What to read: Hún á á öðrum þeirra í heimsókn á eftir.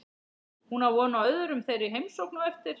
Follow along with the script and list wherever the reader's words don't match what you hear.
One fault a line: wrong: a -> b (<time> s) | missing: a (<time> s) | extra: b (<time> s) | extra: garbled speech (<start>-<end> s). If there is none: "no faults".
extra: von (0.9 s)